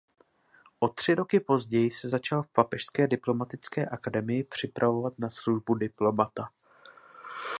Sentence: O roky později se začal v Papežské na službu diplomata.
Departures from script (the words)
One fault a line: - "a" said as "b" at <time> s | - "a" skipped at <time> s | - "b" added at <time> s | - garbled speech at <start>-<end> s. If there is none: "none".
- "tři" added at 0.9 s
- "diplomatické akademii připravovat" added at 3.1 s